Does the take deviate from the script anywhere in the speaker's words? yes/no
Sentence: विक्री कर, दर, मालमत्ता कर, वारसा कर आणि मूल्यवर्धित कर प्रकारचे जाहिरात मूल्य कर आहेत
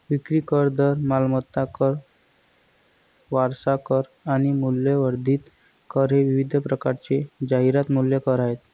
yes